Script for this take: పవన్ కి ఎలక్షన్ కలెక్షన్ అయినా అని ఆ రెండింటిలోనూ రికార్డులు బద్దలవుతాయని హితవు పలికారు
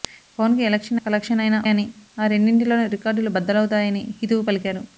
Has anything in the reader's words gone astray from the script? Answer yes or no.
no